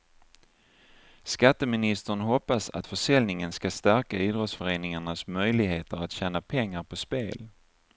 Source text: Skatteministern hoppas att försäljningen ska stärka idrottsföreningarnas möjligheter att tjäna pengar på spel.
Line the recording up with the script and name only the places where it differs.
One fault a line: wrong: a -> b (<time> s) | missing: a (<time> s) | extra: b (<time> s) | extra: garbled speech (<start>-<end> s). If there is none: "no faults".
no faults